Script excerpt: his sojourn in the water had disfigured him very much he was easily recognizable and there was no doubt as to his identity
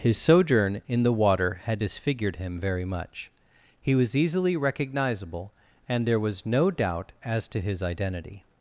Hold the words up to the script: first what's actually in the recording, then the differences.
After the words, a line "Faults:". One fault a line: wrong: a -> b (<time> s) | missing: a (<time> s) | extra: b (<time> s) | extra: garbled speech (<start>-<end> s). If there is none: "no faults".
his sojourn in the water had disfigured him very much he was easily recognizable and there was no doubt as to his identity
Faults:
no faults